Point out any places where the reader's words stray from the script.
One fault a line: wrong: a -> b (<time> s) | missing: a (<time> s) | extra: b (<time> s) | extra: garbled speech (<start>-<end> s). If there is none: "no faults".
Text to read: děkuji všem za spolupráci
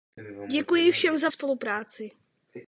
no faults